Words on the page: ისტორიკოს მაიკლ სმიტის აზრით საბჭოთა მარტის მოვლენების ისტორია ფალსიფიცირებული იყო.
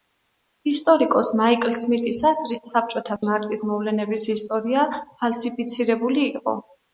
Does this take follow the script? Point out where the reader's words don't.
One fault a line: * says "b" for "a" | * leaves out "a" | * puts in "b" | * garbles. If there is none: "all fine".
all fine